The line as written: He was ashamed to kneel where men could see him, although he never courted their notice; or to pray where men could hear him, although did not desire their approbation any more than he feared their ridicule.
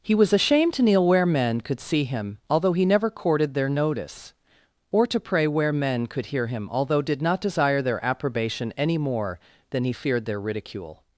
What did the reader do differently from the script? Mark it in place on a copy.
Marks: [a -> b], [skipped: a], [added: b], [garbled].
He was ashamed to kneel where men could see him, although he never courted their notice; or to pray where men could hear him, although did not desire their approbation any more than he feared their ridicule.